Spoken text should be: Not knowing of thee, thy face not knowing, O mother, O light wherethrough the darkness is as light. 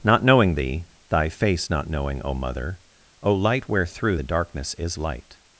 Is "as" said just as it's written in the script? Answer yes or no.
no